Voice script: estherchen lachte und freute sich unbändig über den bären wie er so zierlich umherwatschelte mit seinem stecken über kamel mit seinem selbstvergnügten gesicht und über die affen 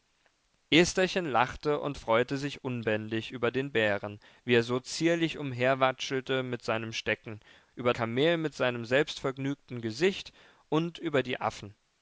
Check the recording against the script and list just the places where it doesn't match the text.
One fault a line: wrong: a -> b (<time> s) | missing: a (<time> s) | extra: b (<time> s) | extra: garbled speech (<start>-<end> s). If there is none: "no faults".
no faults